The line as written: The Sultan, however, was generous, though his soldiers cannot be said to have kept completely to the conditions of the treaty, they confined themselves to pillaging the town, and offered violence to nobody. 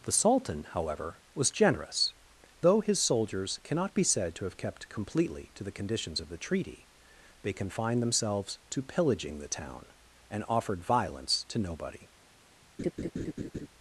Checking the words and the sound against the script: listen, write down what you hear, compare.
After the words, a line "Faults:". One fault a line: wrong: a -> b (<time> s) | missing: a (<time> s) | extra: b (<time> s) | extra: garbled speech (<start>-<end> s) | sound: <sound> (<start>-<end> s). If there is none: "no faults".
The Sultan, however, was generous, though his soldiers cannot be said to have kept completely to the conditions of the treaty, they confined themselves to pillaging the town, and offered violence to nobody.
Faults:
sound: laugh (12.8-13.7 s)